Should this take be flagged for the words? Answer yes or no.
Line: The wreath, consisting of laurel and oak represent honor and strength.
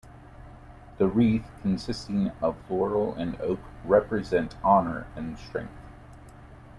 no